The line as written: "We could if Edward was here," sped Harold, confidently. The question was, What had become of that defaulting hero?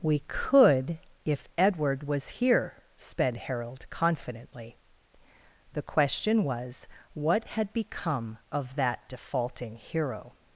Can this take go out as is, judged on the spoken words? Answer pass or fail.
pass